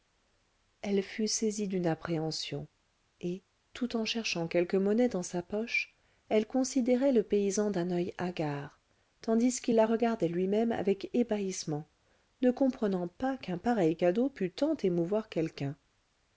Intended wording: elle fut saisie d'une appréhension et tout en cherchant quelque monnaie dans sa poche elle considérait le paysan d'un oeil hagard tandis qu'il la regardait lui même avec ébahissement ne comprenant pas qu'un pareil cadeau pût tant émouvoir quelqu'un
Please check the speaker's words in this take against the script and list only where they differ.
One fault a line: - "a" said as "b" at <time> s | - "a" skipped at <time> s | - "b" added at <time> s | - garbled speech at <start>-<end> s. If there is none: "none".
none